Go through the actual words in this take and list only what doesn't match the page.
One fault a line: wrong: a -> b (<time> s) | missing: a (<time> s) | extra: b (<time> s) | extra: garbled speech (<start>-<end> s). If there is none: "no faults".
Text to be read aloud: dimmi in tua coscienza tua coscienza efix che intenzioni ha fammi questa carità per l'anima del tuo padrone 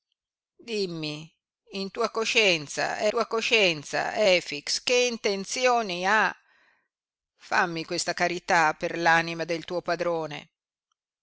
no faults